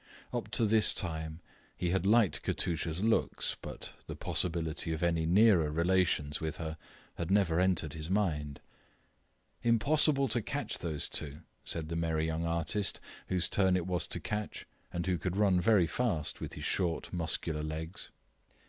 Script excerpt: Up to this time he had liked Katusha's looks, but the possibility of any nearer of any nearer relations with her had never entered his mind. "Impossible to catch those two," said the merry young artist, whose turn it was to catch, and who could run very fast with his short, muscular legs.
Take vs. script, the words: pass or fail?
fail